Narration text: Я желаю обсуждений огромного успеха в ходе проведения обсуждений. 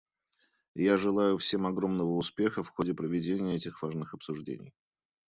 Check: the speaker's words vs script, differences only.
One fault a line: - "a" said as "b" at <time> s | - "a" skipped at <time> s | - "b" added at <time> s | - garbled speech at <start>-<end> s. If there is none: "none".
- "обсуждений" said as "всем" at 1.4 s
- "этих важных" added at 3.6 s